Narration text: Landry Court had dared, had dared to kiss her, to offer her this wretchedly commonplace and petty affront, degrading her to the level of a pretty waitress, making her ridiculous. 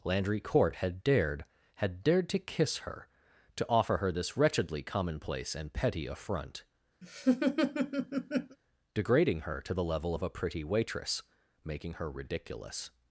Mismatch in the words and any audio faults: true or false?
true